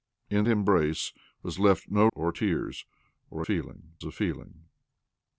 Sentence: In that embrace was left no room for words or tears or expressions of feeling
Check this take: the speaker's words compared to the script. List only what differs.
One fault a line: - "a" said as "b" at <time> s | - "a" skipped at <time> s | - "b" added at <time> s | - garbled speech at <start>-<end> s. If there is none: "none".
- "that" skipped at 0.5 s
- "room for words" skipped at 2.1 s
- "expressions" said as "feeling" at 3.4 s